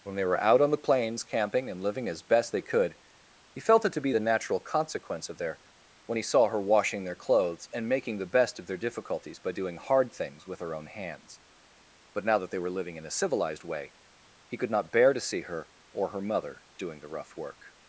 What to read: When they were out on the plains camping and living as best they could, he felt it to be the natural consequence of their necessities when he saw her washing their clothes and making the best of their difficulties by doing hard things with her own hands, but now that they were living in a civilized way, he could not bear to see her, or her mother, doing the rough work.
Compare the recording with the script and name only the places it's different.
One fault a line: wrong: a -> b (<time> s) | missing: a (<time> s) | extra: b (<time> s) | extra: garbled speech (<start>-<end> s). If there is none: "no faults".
missing: necessities (5.6 s)